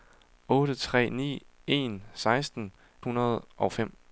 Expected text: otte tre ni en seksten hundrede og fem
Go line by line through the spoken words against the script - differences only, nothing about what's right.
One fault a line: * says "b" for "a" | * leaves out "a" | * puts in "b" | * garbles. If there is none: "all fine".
all fine